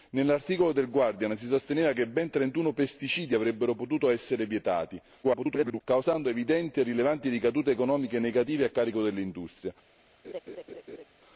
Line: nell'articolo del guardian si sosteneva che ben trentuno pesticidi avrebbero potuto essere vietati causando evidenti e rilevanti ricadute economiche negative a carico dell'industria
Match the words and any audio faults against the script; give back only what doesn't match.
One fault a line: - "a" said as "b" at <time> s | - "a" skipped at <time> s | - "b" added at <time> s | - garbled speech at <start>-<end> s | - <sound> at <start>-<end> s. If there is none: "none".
- garbled speech at 5.2-5.8 s
- laugh at 10.2-11.1 s